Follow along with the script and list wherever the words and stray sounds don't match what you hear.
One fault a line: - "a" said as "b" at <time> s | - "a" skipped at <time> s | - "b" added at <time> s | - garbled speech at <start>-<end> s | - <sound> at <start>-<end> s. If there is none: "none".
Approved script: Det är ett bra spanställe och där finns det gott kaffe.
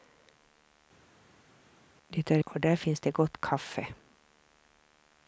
- "ett bra spanställe" skipped at 2.4 s